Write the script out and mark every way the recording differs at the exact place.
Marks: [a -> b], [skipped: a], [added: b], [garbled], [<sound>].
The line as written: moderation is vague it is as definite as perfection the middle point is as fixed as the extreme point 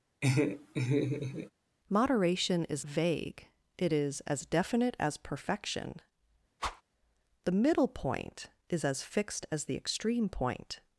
[laugh] moderation is vague it is as definite as perfection [whoosh] the middle point is as fixed as the extreme point